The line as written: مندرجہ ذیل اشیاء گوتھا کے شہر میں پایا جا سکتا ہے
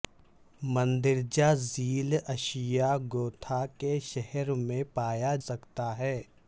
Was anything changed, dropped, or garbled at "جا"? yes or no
yes